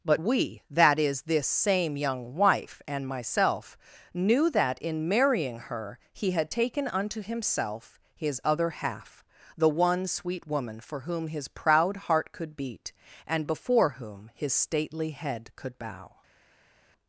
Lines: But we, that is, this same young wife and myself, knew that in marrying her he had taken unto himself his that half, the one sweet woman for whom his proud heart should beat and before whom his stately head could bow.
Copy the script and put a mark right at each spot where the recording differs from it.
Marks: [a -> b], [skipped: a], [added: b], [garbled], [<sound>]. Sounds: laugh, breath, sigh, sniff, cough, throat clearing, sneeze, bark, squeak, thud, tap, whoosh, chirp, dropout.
But we, that is, this same young wife and myself, knew that in marrying her he had taken unto himself his [that -> other] half, the one sweet woman for whom his proud heart [should -> could] beat and before whom his stately head could bow.